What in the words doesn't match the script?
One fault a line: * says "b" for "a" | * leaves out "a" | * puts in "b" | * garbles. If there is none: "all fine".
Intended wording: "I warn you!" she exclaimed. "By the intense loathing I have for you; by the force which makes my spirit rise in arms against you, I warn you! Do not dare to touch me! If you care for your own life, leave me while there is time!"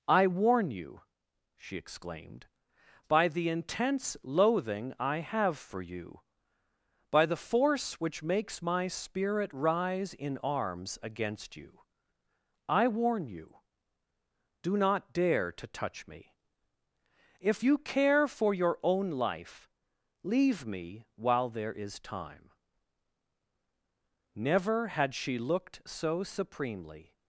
* puts in "Never had she looked so supremely"